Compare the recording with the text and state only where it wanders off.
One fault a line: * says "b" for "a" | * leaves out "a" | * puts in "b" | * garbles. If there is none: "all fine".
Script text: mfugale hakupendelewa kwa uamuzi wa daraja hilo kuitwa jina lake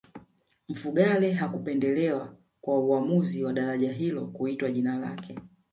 all fine